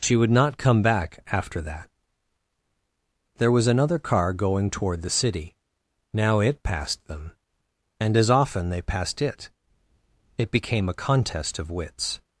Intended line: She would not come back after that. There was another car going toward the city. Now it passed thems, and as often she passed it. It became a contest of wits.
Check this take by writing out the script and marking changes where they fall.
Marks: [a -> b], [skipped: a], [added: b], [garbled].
She would not come back after that. There was another car going toward the city. Now it passed [thems, -> them] and as often [she -> they] passed it. It became a contest of wits.